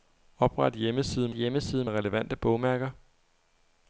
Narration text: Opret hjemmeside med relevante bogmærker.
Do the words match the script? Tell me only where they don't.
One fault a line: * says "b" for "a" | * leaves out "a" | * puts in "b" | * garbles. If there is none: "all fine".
* puts in "hjemmeside"